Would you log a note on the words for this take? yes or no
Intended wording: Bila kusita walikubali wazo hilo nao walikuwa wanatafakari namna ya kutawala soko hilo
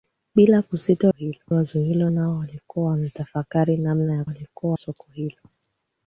yes